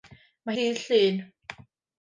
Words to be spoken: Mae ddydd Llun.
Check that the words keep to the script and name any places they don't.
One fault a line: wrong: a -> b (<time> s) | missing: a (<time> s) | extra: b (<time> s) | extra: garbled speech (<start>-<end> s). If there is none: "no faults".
no faults